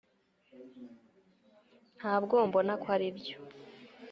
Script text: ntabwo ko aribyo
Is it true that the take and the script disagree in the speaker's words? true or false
true